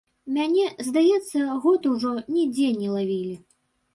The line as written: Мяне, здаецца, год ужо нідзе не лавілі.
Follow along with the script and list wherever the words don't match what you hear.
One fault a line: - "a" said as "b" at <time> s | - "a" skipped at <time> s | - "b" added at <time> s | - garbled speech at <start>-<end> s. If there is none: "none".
none